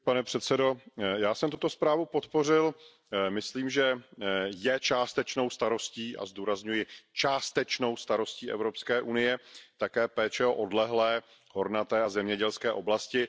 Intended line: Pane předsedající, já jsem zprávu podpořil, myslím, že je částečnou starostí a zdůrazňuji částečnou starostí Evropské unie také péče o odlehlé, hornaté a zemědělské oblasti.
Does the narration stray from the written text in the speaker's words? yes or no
yes